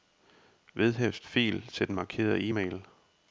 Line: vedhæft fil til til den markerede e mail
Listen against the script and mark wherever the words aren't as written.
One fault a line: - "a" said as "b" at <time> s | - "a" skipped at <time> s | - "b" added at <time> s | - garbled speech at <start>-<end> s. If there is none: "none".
- "til" skipped at 1.9 s